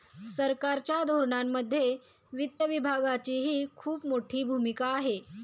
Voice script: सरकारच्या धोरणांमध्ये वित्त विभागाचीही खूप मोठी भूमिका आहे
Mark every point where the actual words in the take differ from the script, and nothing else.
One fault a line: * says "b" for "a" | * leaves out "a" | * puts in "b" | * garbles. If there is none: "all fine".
all fine